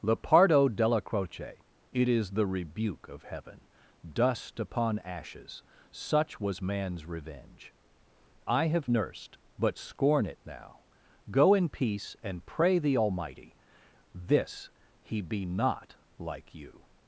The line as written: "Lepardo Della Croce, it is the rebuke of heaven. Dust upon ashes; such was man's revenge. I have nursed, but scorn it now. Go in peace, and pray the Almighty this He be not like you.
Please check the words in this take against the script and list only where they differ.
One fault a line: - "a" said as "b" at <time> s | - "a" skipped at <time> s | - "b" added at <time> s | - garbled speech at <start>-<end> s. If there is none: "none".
none